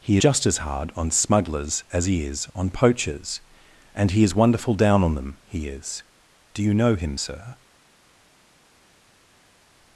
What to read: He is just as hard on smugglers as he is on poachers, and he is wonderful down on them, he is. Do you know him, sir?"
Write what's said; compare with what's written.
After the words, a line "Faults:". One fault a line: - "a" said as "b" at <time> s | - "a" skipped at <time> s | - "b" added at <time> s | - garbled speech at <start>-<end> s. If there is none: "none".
He just as hard on smugglers as he is on poachers, and he is wonderful down on them, he is. Do you know him, sir?"
Faults:
- "is" skipped at 0.2 s